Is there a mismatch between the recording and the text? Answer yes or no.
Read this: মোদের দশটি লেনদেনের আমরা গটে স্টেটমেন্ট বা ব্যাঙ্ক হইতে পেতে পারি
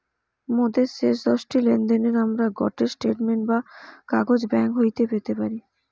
yes